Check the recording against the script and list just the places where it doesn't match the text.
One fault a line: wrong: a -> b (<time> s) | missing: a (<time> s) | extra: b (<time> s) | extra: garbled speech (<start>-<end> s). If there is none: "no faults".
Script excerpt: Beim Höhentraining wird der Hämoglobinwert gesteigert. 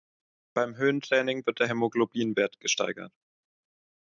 no faults